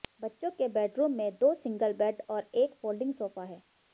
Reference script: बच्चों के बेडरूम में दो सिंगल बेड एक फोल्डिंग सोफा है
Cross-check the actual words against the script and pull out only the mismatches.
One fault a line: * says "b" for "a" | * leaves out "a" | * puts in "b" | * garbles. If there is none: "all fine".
* puts in "और"